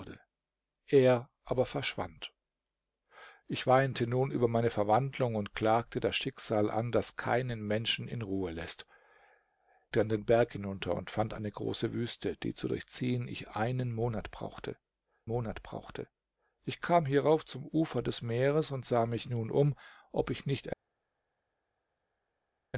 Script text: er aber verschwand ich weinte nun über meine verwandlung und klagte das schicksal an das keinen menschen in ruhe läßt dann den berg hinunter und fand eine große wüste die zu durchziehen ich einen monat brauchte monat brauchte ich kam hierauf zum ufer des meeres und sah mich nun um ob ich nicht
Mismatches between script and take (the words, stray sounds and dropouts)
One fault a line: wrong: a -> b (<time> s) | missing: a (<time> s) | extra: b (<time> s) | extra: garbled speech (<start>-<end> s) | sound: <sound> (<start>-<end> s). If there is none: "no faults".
no faults